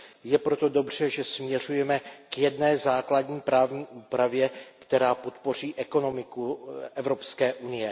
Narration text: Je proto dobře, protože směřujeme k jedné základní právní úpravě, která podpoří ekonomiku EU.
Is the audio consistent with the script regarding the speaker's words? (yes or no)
no